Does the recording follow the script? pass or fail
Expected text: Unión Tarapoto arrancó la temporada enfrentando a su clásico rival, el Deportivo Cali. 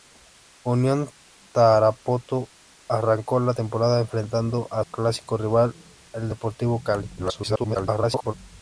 fail